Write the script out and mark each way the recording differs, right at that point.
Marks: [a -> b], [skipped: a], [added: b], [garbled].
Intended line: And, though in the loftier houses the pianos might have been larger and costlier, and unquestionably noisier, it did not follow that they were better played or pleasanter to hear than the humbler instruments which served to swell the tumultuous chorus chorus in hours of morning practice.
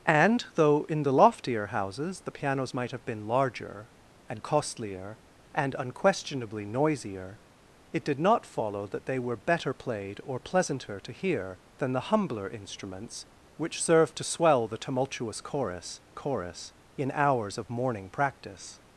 And, though in the loftier houses the pianos might have been larger and costlier, and unquestionably noisier, it did not follow that they were better played or pleasanter to hear than the humbler instruments which served to swell the tumultuous chorus chorus in hours of morning practice.